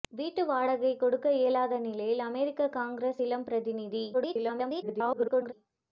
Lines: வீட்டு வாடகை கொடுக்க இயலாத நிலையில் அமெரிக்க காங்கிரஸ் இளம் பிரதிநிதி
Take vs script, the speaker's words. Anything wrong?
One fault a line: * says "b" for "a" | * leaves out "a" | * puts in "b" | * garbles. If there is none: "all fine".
* garbles